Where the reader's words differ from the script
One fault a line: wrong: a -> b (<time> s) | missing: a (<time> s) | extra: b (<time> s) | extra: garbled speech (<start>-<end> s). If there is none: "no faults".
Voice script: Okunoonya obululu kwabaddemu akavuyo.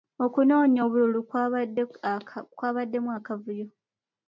no faults